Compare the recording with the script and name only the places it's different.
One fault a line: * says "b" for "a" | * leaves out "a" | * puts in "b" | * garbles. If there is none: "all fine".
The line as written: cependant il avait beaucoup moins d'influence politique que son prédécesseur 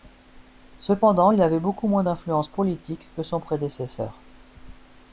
all fine